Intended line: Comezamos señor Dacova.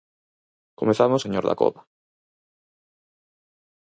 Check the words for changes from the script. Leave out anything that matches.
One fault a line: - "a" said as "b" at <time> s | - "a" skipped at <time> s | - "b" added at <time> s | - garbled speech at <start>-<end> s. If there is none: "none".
none